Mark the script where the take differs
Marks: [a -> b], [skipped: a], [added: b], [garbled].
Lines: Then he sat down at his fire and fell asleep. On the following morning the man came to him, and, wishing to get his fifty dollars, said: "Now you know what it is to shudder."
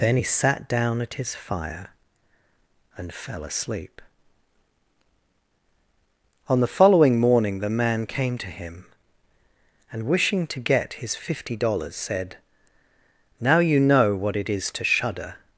Then he sat down at his fire and fell asleep. On the following morning the man came to him, and, wishing to get his fifty dollars, said: "Now you know what it is to shudder."